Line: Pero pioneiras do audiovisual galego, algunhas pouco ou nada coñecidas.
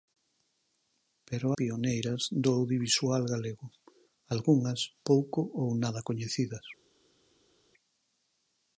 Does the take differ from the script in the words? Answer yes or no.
no